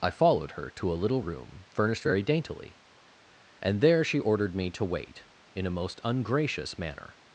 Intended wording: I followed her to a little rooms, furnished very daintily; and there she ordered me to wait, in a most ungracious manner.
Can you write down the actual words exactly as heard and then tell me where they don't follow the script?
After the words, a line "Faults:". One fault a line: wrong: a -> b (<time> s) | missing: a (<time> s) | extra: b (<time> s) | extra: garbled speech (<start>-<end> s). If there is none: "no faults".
I followed her to a little room, furnished very daintily; and there she ordered me to wait, in a most ungracious manner.
Faults:
wrong: rooms -> room (1.2 s)